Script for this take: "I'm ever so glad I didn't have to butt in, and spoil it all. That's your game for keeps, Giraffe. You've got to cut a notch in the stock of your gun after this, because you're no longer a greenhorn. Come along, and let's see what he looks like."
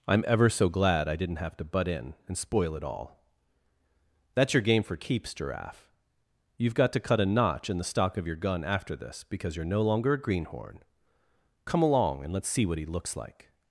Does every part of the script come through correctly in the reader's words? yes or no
yes